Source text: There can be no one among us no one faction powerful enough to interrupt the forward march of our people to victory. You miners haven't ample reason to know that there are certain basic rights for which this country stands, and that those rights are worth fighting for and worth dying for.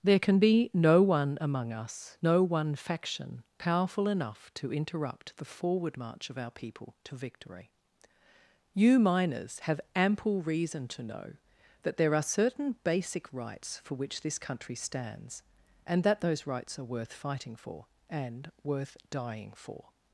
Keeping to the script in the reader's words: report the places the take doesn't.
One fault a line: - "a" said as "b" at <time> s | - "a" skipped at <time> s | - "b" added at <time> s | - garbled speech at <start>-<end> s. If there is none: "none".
- "haven't" said as "have" at 9.6 s